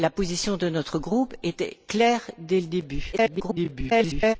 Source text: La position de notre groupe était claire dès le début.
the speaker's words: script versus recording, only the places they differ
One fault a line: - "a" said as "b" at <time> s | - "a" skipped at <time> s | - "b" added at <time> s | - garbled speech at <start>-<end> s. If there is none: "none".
- garbled speech at 3.1-4.4 s